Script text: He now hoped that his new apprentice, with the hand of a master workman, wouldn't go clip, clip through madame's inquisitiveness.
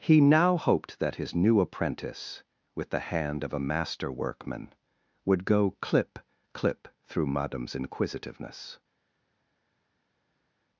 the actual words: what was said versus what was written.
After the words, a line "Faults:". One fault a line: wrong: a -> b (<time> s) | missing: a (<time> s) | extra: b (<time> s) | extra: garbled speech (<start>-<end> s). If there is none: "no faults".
He now hoped that his new apprentice, with the hand of a master workman, would go clip, clip through madame's inquisitiveness.
Faults:
wrong: wouldn't -> would (5.3 s)